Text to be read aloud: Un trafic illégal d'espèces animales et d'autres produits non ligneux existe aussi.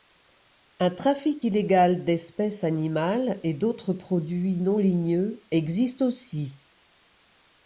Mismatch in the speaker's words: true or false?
false